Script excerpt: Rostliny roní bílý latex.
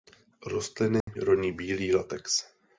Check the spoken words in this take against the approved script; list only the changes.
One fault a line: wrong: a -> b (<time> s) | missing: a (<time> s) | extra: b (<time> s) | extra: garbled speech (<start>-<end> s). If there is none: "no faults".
no faults